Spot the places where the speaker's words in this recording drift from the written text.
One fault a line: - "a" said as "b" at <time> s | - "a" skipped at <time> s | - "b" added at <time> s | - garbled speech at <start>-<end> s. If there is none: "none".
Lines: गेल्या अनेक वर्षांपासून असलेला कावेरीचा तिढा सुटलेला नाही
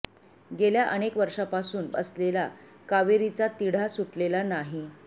none